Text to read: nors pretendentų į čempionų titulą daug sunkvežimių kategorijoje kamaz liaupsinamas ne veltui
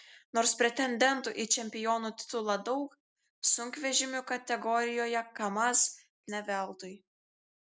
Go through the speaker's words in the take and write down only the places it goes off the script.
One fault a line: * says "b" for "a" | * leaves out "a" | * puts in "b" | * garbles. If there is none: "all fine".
* leaves out "liaupsinamas"